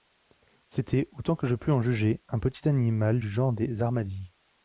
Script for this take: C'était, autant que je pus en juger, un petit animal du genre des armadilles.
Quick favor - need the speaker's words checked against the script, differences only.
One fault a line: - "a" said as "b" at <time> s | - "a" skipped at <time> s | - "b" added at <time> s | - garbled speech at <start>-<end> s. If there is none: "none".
none